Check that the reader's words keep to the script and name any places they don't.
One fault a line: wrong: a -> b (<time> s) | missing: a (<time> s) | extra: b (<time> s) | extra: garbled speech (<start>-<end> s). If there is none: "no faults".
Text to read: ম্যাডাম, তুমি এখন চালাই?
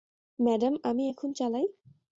wrong: তুমি -> আমি (0.8 s)